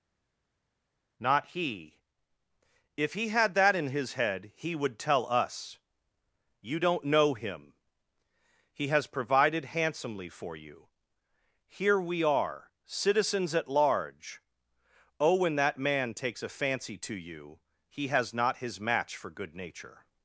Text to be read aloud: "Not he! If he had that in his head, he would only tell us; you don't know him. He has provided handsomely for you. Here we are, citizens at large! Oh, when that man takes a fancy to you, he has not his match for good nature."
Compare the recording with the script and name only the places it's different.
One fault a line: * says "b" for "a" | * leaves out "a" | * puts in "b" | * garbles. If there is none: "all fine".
* leaves out "only"